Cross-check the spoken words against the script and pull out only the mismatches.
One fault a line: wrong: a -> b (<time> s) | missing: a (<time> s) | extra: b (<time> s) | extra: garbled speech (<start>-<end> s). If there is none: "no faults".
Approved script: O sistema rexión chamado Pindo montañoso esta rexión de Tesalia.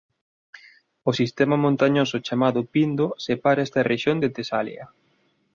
wrong: rexión -> montañoso (1.6 s)
wrong: montañoso -> separa (3.2 s)